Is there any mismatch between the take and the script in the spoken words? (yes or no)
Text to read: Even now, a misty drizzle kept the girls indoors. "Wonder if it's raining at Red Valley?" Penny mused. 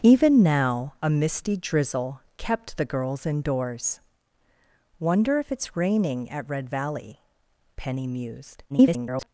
yes